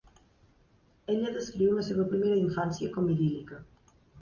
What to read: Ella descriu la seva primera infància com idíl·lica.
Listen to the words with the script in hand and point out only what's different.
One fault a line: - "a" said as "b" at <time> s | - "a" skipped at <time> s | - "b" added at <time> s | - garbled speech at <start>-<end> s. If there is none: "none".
none